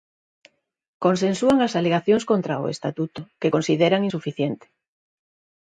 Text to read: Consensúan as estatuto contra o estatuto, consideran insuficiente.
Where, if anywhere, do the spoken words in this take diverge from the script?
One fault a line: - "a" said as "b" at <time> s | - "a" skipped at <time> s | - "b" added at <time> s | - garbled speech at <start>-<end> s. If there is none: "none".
- "estatuto" said as "alegacións" at 1.8 s
- "que" added at 3.4 s